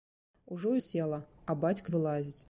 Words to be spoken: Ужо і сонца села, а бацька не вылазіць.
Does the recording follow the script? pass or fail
fail